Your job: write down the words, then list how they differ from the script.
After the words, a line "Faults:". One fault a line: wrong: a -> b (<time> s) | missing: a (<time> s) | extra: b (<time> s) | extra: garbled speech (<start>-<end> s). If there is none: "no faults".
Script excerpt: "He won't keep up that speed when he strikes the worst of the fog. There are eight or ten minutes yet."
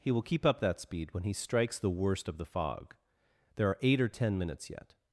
"He will keep up that speed when he strikes the worst of the fog. There are eight or ten minutes yet."
Faults:
wrong: won't -> will (0.1 s)